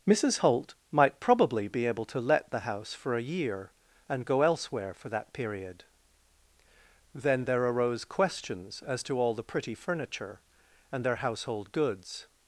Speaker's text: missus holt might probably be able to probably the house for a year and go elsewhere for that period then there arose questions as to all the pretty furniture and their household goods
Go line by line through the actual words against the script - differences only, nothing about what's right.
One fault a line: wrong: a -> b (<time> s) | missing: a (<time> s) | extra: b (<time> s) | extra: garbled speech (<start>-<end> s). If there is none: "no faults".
wrong: probably -> let (2.2 s)